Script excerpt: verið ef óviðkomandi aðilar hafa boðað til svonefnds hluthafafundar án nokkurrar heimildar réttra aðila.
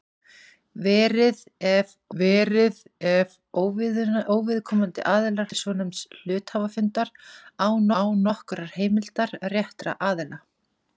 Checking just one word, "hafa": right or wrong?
wrong